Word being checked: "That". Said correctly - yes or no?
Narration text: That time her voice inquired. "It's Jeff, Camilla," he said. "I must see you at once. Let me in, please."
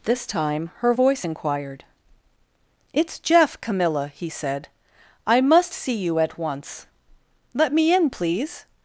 no